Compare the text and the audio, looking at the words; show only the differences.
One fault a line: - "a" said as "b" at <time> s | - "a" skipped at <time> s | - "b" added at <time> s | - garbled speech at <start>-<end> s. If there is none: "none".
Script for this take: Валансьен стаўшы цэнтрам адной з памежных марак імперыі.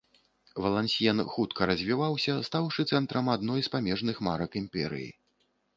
- "хутка развіваўся" added at 1.3 s